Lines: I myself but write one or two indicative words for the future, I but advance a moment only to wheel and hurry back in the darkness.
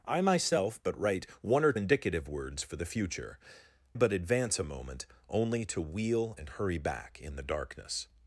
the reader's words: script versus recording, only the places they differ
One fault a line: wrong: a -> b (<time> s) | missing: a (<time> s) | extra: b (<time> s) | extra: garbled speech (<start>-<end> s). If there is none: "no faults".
missing: two (1.7 s)
missing: I (3.4 s)